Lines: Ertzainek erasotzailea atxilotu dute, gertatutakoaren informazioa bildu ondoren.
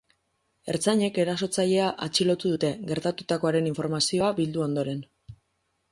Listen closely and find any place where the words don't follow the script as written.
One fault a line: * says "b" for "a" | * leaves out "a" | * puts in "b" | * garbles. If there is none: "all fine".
all fine